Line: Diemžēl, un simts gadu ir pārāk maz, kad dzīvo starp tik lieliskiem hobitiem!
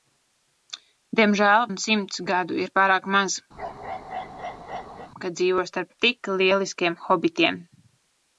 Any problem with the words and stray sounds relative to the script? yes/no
yes